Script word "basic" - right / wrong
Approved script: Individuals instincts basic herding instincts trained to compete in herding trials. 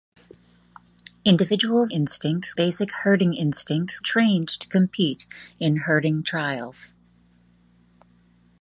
right